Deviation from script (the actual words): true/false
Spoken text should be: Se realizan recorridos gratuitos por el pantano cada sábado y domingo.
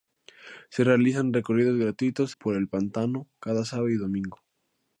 false